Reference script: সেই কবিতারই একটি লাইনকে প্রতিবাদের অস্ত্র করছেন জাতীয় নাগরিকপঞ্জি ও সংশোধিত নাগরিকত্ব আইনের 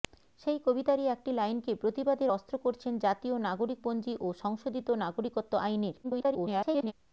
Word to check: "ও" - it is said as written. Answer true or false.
true